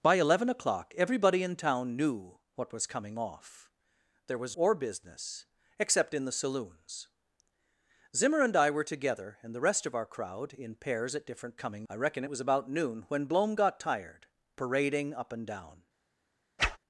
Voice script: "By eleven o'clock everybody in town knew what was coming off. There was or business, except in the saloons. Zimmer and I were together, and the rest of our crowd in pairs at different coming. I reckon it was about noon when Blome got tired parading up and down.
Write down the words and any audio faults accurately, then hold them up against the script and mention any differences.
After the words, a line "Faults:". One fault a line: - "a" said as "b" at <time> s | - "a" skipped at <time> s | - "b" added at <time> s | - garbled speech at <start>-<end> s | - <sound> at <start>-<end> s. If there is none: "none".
"By eleven o'clock everybody in town knew what was coming off. There was or business, except in the saloons. Zimmer and I were together, and the rest of our crowd in pairs at different coming. I reckon it was about noon when Blome got tired parading up and down.
Faults:
- whoosh at 16.6-16.8 s